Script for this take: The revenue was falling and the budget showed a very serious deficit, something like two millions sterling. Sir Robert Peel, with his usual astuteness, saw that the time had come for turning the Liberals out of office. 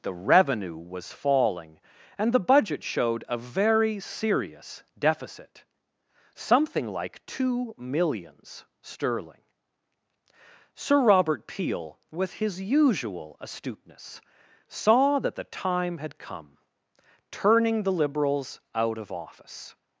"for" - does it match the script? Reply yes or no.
no